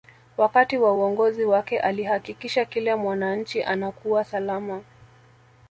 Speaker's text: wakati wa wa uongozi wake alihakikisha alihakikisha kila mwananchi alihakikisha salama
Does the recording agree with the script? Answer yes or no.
no